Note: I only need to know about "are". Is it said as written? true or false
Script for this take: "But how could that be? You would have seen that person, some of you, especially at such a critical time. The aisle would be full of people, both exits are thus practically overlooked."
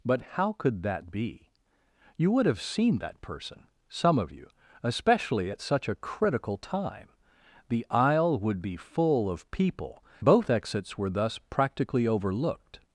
false